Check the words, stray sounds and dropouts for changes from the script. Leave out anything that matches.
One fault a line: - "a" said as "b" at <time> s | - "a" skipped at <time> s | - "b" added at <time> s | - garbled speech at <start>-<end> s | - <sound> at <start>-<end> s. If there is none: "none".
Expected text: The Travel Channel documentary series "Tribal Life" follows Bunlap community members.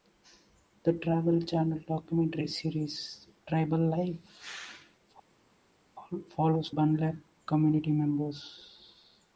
none